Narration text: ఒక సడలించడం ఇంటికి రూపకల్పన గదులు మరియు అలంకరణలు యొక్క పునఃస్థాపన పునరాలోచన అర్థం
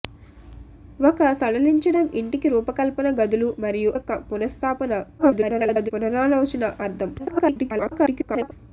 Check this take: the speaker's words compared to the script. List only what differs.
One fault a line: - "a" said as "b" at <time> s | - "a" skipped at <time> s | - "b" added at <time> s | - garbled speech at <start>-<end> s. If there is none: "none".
- "అలంకరణలు" skipped at 3.9 s
- garbled speech at 5.2-5.9 s
- garbled speech at 7.2-8.5 s